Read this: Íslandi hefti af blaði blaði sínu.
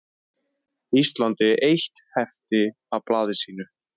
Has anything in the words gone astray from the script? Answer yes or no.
yes